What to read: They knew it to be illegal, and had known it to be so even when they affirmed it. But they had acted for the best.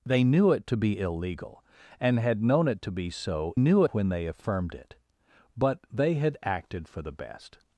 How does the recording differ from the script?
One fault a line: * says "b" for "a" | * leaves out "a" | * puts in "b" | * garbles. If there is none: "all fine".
* says "knew" for "even"